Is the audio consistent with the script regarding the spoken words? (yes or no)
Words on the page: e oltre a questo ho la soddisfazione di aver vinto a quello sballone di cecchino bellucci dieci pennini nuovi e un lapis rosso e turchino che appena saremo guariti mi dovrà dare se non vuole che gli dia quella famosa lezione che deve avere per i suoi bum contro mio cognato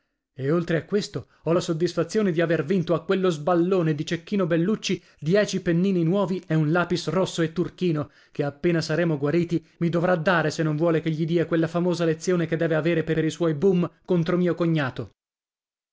no